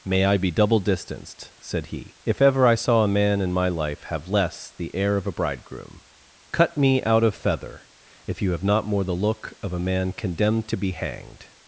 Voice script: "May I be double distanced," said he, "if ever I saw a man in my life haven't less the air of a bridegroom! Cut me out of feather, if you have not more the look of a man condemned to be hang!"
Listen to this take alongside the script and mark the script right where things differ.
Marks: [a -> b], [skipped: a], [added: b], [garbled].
"May I be double distanced," said he, "if ever I saw a man in my life [haven't -> have] less the air of a bridegroom! Cut me out of feather, if you have not more the look of a man condemned to be [hang!" -> hanged]